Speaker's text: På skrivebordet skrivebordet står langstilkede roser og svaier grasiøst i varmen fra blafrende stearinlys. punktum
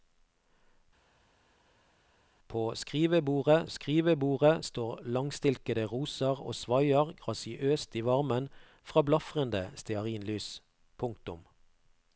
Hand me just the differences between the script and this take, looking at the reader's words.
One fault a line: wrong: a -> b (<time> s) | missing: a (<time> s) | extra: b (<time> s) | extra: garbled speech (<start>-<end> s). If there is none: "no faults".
no faults